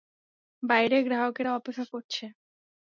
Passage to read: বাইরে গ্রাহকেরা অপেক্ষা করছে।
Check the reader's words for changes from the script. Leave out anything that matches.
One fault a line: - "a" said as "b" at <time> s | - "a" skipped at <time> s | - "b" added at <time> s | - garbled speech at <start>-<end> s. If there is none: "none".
none